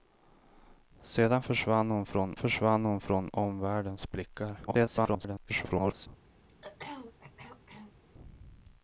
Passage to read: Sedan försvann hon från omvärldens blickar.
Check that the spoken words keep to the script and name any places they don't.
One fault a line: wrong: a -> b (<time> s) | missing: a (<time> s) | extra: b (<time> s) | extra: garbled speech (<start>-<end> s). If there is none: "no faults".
extra: försvann hon från (2.4 s)
extra: garbled speech (4.7-6.1 s)